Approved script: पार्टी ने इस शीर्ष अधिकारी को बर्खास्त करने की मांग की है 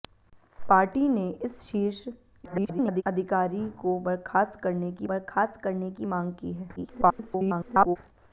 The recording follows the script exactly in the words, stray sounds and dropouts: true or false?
false